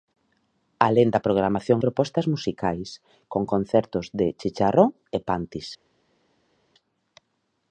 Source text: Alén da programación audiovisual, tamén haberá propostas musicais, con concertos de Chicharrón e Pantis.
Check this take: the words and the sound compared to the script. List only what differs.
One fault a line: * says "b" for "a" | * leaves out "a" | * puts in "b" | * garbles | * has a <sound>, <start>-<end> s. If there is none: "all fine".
* leaves out "audiovisual tamén haberá"